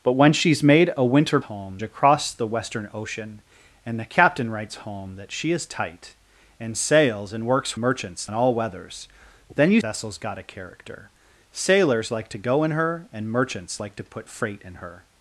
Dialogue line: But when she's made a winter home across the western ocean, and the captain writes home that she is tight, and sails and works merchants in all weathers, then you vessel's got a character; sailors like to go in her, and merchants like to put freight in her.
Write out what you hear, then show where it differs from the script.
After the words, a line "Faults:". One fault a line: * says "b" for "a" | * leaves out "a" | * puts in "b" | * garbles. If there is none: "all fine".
But when she's made a winter home across the western ocean, and the captain writes home that she is tight, and sails and works merchants in all weathers, then you vessel's got a character; sailors like to go in her, and merchants like to put freight in her.
Faults:
all fine